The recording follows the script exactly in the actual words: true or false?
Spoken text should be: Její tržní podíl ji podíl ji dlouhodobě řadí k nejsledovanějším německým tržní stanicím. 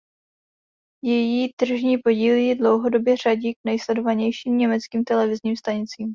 false